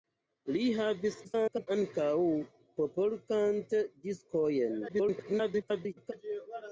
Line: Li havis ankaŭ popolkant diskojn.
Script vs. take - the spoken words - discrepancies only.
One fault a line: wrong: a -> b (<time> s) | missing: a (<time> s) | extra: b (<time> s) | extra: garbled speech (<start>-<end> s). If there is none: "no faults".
extra: garbled speech (1.2-1.7 s)
extra: garbled speech (4.9-6.1 s)